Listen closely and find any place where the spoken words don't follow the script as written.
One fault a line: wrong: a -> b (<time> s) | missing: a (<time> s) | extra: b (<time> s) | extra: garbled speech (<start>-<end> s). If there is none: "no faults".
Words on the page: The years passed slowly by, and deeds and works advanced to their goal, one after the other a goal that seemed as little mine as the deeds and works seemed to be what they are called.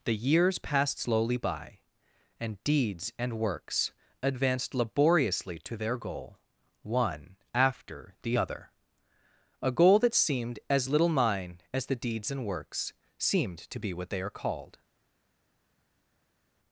extra: laboriously (4.7 s)